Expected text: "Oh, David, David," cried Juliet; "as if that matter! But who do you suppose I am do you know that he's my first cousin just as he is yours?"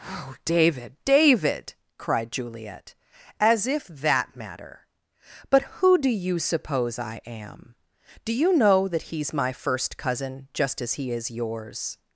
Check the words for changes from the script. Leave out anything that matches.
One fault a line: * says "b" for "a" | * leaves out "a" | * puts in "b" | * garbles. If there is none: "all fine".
all fine